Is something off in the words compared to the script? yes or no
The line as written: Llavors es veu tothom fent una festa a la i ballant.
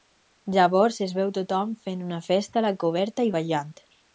yes